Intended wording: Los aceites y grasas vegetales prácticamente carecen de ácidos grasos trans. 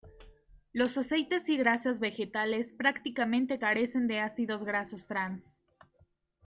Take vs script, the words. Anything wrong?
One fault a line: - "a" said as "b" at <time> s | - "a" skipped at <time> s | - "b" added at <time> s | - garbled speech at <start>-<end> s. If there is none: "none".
none